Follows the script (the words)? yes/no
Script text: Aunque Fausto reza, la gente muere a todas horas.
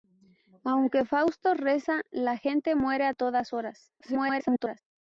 no